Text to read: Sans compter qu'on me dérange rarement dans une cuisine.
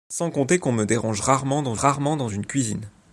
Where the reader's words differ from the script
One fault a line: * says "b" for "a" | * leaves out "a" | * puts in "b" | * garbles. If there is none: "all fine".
* puts in "rarement dans"